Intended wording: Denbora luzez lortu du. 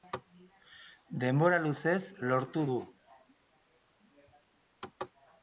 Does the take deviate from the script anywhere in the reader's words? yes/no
no